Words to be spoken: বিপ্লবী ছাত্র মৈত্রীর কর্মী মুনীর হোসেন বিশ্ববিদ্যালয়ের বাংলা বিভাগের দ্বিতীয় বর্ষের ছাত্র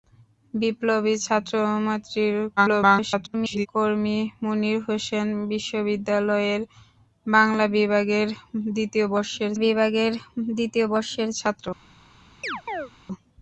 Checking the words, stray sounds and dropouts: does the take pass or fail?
fail